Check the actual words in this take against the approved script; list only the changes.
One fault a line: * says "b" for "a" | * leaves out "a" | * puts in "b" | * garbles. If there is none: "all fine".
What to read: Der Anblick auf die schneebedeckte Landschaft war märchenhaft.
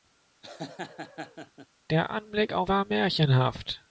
* leaves out "die schneebedeckte Landschaft"